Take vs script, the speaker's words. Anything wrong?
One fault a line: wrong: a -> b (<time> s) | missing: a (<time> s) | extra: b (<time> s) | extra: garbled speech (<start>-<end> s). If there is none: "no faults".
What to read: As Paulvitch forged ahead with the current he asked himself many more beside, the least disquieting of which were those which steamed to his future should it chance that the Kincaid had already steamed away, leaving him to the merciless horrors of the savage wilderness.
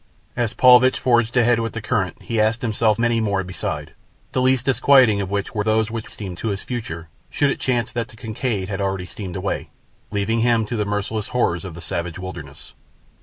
no faults